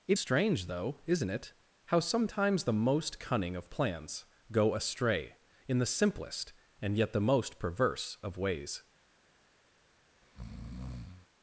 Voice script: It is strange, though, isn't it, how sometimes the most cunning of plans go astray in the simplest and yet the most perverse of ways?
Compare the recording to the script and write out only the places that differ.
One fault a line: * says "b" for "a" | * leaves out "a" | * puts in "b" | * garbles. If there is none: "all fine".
* leaves out "is"